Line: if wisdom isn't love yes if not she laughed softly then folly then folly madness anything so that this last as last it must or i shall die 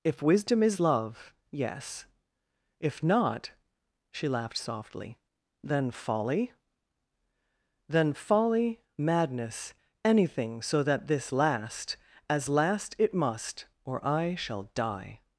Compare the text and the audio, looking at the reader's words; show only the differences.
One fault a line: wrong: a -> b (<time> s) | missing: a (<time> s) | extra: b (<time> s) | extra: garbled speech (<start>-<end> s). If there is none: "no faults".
wrong: isn't -> is (0.6 s)